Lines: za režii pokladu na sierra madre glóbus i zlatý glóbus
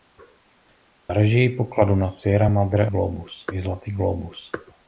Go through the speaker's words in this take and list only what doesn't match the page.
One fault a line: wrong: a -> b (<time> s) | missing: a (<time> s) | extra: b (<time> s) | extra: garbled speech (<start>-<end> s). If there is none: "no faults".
no faults